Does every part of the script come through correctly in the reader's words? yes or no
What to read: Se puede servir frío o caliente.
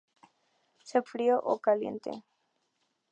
no